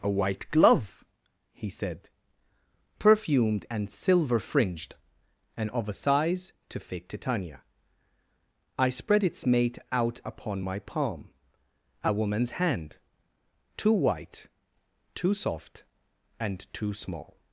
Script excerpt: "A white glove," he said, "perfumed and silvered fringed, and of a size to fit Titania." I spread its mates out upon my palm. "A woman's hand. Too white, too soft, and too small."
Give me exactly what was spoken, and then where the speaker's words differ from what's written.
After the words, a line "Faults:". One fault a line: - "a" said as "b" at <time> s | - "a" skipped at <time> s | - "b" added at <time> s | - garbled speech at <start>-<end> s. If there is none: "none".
"A white glove," he said, "perfumed and silver fringed, and of a size to fit Titania." I spread its mate out upon my palm. "A woman's hand. Too white, too soft, and too small."
Faults:
- "silvered" said as "silver" at 3.9 s
- "mates" said as "mate" at 9.4 s